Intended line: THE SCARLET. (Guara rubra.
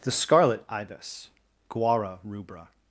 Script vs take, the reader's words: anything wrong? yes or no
yes